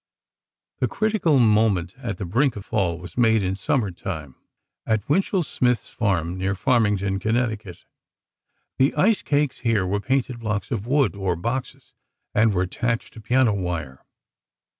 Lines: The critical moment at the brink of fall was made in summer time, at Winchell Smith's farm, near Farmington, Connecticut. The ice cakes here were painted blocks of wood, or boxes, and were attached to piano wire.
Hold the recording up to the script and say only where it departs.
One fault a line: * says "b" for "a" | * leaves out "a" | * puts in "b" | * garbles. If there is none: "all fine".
all fine